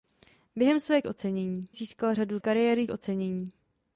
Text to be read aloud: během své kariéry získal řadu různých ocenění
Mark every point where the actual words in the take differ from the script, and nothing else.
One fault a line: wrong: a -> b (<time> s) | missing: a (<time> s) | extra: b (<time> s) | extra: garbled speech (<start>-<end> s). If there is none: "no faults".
wrong: kariéry -> ocenění (1.1 s)
wrong: různých -> kariéry (2.4 s)